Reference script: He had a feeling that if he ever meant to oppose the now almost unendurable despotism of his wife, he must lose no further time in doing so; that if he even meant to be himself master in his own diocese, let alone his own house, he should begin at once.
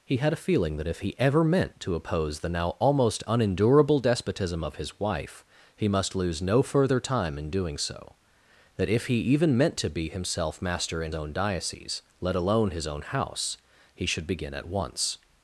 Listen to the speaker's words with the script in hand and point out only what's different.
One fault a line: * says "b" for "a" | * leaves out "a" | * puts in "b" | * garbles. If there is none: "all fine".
* leaves out "his"